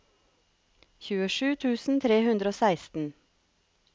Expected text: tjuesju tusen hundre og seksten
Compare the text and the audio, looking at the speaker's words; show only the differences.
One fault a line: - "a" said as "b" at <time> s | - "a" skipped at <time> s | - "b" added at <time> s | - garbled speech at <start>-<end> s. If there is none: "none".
- "tre" added at 2.1 s